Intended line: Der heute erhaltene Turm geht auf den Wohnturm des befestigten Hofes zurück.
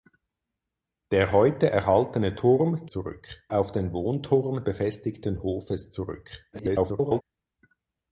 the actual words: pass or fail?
fail